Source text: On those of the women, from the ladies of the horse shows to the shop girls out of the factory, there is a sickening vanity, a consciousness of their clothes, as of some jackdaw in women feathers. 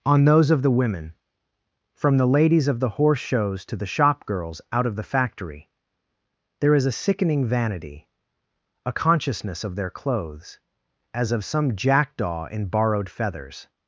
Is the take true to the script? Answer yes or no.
no